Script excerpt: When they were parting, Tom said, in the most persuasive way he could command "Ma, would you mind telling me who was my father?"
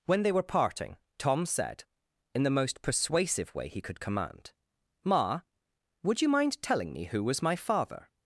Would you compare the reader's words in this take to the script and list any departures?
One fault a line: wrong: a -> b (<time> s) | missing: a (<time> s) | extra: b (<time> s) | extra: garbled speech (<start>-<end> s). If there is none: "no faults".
no faults